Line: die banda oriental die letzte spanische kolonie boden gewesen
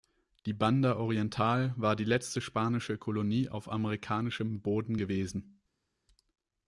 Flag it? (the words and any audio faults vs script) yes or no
yes